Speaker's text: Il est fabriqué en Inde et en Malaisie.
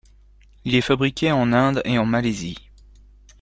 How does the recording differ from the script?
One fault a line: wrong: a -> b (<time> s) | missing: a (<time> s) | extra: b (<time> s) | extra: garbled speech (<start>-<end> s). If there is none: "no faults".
no faults